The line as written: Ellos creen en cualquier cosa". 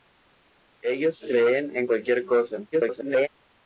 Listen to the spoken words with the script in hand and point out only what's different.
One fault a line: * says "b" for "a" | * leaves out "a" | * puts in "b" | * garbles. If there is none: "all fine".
* garbles